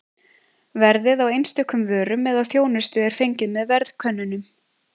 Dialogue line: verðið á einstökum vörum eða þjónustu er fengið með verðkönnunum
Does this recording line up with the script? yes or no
yes